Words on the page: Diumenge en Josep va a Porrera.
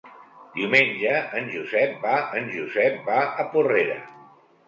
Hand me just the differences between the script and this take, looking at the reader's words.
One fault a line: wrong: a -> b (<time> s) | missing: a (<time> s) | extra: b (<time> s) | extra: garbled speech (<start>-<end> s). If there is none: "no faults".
extra: en Josep va (2.4 s)